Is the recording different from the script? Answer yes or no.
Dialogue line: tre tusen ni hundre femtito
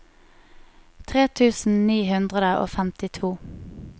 yes